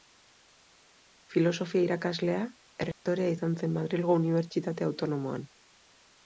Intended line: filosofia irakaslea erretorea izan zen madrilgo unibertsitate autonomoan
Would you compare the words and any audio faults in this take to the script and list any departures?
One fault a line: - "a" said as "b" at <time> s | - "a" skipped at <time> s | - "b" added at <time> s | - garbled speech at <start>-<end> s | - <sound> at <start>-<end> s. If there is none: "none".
- dropout at 2.9-3.1 s